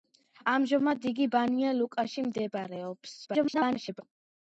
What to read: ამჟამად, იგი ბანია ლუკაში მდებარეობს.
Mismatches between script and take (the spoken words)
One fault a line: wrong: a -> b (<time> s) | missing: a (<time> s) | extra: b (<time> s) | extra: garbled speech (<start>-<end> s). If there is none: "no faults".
extra: garbled speech (3.3-4.0 s)